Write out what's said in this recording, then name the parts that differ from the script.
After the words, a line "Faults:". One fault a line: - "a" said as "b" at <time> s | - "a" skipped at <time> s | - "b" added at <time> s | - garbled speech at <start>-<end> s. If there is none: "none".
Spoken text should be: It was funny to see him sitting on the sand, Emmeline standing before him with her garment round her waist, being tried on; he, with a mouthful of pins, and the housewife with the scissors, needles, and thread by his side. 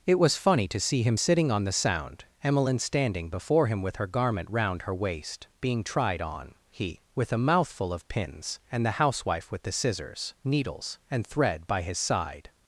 It was funny to see him sitting on the sound, Emmeline standing before him with her garment round her waist, being tried on; he, with a mouthful of pins, and the housewife with the scissors, needles, and thread by his side.
Faults:
- "sand" said as "sound" at 1.7 s